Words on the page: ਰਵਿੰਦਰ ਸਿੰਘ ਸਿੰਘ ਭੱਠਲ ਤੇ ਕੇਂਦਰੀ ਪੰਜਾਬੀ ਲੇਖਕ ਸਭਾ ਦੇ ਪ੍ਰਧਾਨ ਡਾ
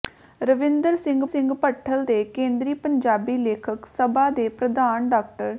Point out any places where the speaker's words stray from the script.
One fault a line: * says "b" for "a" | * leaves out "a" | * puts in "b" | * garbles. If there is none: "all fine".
all fine